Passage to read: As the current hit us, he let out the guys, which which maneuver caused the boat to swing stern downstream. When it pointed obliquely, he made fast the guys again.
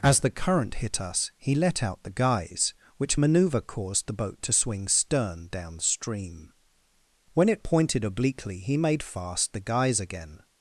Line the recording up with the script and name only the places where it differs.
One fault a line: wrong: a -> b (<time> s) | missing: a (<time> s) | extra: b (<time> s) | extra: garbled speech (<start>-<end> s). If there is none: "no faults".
missing: which (3.2 s)